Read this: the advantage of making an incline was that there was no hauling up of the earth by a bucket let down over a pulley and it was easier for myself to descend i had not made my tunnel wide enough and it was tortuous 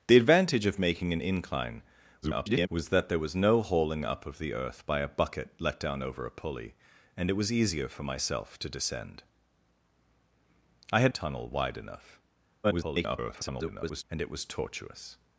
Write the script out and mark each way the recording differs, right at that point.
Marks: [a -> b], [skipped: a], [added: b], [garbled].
the advantage of making an incline [garbled] was that there was no hauling up of the earth by a bucket let down over a pulley and it was easier for myself to descend i had [skipped: not made my] tunnel wide enough [garbled] and it was tortuous